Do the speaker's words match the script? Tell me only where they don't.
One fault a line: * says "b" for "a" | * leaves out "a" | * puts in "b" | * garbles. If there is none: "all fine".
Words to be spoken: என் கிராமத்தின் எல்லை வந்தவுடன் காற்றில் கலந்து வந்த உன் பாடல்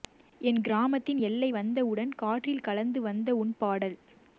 all fine